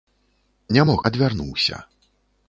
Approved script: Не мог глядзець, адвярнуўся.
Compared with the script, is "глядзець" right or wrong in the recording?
wrong